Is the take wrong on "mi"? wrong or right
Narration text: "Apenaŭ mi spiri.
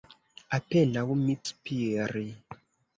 right